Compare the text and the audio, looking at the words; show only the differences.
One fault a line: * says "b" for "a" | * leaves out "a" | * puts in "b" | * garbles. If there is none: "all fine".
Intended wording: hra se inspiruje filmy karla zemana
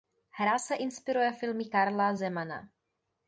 all fine